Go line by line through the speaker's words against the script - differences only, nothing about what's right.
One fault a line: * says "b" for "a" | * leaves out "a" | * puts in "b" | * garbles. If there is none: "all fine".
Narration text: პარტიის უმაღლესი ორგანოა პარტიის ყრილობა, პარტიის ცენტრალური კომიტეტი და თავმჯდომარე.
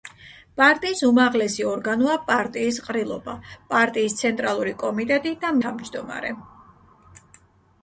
all fine